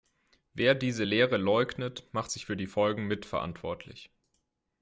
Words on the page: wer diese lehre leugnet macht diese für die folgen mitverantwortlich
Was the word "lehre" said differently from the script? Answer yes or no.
no